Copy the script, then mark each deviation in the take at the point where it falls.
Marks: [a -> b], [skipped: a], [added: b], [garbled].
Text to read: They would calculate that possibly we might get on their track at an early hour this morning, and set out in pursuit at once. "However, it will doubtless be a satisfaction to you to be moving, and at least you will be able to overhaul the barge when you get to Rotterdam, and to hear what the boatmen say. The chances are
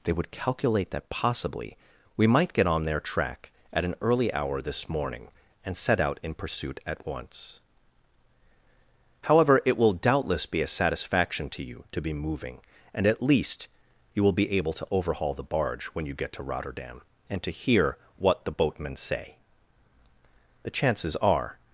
They would calculate that possibly we might get on their track at an early hour this morning, and set out in pursuit at once. "However, it will doubtless be a satisfaction to you to be moving, and at least you will be able to overhaul the barge when you get to Rotterdam, and to hear what the boatmen say. The chances are